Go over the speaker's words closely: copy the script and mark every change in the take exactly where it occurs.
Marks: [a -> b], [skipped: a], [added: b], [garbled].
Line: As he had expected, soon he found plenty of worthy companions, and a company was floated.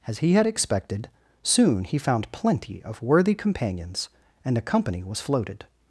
As he had expected, soon he found plenty of worthy companions, and a company was floated.